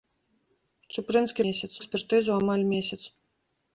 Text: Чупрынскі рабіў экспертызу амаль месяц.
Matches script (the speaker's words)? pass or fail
fail